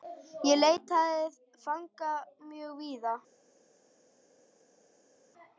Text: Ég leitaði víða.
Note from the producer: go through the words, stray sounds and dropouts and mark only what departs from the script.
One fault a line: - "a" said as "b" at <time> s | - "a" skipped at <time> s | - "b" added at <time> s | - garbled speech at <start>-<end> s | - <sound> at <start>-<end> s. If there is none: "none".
- "fanga mjög" added at 1.7 s